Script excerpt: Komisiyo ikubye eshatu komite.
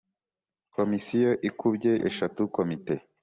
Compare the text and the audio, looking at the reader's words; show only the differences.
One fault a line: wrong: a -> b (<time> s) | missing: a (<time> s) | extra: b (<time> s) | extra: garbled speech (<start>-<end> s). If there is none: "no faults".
no faults